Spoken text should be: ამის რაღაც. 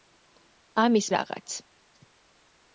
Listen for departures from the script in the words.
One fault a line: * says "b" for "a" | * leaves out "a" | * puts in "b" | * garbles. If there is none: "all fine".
all fine